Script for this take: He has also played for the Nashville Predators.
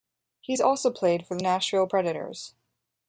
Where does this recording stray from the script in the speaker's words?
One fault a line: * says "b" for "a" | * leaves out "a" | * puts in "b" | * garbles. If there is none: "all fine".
all fine